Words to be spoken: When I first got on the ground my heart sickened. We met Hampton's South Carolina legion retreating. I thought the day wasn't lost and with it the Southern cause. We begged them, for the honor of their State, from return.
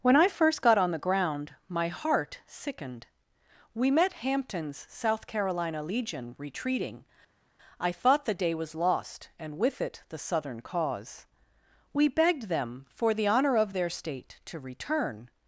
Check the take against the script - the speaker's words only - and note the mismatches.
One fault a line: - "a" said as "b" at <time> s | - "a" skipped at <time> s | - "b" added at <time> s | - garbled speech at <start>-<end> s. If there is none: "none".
- "wasn't" said as "was" at 8.5 s
- "from" said as "to" at 14.5 s